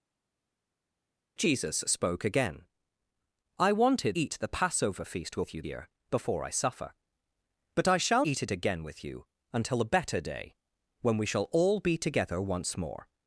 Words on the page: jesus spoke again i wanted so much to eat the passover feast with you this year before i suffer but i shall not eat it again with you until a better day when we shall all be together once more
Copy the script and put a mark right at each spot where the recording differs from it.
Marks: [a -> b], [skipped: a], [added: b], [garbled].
jesus spoke again i wanted [skipped: so much to] eat the passover feast with you [skipped: this] year before i suffer but i shall [skipped: not] eat it again with you until a better day when we shall all be together once more